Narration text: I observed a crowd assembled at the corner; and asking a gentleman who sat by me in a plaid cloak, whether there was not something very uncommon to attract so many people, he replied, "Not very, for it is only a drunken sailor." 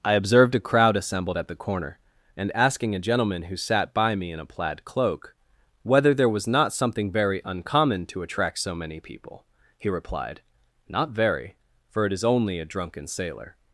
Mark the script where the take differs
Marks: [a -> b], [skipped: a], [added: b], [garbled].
I observed a crowd assembled at the corner; and asking a gentleman who sat by me in a plaid cloak, whether there was not something very uncommon to attract so many people, he replied, "Not very, for it is only a drunken sailor."